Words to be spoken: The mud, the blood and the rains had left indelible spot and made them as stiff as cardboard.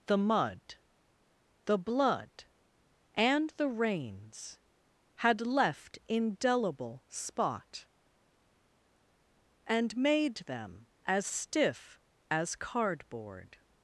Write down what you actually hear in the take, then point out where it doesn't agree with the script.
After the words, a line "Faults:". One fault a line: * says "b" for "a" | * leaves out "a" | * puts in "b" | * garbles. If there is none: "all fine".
The mud, the blood and the rains had left indelible spot and made them as stiff as cardboard.
Faults:
all fine